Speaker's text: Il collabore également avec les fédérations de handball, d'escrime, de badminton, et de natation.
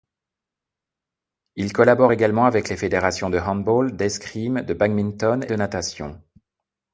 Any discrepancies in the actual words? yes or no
yes